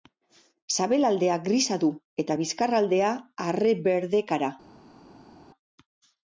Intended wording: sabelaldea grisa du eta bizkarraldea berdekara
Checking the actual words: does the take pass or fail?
fail